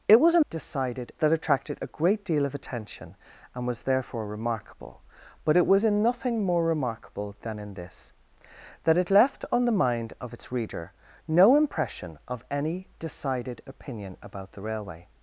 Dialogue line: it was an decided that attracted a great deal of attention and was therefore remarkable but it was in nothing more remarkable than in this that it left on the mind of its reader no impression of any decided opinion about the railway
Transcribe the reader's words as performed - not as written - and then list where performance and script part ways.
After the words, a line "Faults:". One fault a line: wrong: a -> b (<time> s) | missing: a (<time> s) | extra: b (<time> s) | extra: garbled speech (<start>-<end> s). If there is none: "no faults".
it was an decided that attracted a great deal of attention and was therefore remarkable but it was in nothing more remarkable than in this that it left on the mind of its reader no impression of any decided opinion about the railway
Faults:
no faults